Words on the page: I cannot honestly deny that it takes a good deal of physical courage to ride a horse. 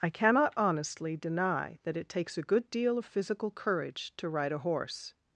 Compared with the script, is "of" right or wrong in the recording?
right